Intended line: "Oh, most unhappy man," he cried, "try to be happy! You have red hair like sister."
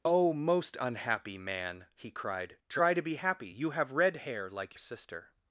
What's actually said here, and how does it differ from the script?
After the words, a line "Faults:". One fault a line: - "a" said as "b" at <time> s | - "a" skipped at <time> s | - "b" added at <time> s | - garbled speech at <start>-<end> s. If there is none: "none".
"Oh, most unhappy man," he cried, "try to be happy! You have red hair like sister."
Faults:
none